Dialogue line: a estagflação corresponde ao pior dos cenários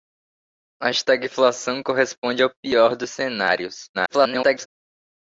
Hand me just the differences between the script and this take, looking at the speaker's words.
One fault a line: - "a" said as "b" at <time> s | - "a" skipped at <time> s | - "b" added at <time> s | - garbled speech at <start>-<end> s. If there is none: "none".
- garbled speech at 3.9-4.7 s